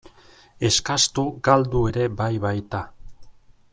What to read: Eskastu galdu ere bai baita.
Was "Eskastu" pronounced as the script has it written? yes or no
yes